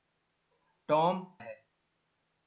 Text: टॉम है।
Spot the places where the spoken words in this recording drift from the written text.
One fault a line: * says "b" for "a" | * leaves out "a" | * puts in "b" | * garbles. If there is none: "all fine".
all fine